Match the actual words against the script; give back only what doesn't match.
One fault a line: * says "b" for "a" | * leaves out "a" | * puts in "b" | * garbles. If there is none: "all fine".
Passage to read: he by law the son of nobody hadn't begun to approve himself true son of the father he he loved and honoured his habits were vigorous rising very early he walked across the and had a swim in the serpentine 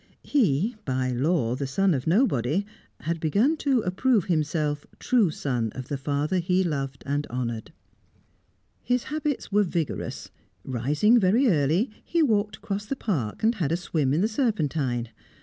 * says "had" for "hadn't"
* leaves out "he"
* puts in "park"